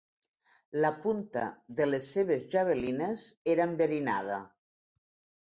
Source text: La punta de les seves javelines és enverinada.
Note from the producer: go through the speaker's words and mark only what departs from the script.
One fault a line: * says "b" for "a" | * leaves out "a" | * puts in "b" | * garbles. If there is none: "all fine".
* says "era" for "és"